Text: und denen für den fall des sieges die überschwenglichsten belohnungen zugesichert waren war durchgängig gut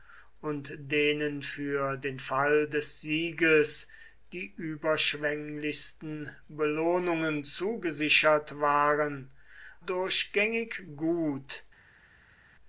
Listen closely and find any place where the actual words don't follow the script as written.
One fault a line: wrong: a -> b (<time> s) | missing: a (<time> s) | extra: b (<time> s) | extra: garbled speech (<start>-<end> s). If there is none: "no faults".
missing: war (9.3 s)